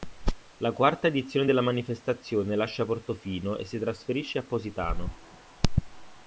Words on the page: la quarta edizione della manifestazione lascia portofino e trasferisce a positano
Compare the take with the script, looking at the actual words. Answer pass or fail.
fail